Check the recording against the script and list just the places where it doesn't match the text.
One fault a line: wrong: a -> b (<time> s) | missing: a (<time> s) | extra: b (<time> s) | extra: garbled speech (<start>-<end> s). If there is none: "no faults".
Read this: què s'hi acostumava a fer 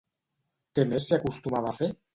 extra: més (0.9 s)